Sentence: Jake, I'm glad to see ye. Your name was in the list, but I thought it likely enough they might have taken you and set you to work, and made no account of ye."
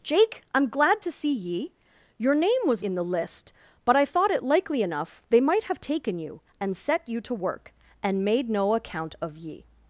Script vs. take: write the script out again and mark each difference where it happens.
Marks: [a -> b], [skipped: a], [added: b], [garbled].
Jake, I'm glad to see ye. Your name was in the list, but I thought it likely enough they might have taken you and set you to work, and made no account of ye."